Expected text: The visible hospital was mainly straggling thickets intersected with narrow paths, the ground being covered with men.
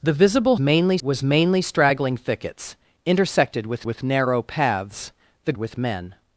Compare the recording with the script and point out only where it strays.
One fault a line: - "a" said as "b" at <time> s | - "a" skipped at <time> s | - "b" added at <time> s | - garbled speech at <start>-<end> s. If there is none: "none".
- "hospital" said as "mainly" at 0.6 s
- "with" added at 3.8 s
- "ground being covered" skipped at 5.5 s